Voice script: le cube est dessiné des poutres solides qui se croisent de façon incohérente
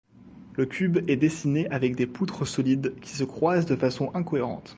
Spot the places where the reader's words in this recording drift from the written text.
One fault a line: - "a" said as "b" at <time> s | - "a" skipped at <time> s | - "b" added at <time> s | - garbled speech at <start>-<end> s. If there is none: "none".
- "avec" added at 1.7 s